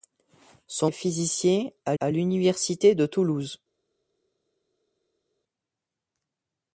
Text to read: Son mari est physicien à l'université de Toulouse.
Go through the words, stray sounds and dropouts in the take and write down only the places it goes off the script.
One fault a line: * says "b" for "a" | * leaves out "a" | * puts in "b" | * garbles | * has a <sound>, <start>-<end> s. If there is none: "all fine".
* leaves out "mari"
* puts in "à"